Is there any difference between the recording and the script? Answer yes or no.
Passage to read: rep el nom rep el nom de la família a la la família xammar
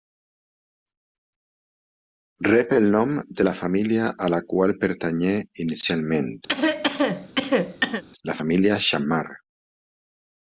yes